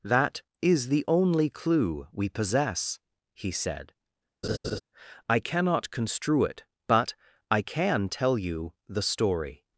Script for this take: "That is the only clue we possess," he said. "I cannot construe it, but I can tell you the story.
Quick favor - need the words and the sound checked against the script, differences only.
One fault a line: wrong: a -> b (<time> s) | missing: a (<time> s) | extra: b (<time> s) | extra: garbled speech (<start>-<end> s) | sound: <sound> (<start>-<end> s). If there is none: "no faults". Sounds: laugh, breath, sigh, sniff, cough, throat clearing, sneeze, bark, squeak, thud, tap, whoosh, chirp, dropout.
sound: laugh (4.4-4.8 s)